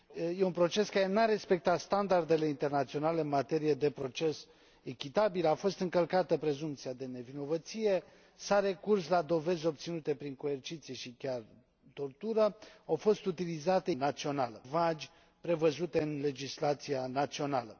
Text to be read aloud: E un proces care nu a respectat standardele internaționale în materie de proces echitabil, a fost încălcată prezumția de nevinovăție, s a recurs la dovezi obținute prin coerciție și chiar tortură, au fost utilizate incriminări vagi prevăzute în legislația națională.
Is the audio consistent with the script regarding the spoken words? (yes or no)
no